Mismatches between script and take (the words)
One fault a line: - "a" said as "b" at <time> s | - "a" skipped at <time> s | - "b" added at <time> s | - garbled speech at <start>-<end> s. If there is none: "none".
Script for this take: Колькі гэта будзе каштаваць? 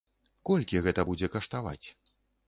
none